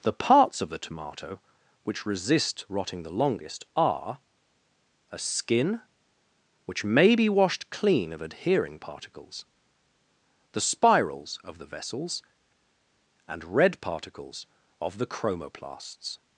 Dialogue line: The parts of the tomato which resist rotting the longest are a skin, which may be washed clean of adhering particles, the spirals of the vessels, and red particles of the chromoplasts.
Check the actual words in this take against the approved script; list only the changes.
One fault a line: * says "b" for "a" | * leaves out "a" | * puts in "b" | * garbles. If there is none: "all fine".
all fine